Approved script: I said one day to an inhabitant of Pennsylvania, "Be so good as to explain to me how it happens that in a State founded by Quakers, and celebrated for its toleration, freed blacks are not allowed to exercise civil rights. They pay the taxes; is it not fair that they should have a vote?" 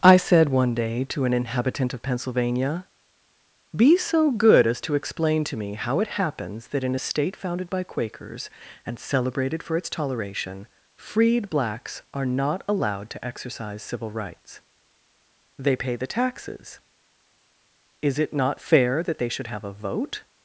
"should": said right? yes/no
yes